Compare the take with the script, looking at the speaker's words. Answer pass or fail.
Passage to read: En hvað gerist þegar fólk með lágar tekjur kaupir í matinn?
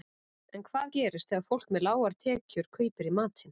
pass